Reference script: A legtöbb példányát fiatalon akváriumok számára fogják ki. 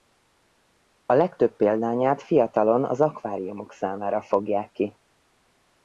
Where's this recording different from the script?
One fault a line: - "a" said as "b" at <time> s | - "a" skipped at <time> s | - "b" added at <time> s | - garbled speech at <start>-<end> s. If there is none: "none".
- "az" added at 2.9 s